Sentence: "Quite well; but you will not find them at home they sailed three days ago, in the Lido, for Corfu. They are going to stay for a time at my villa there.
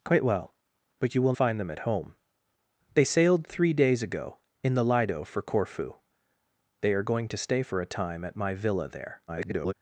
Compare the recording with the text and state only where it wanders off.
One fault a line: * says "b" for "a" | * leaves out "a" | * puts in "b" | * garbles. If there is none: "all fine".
* leaves out "not"
* garbles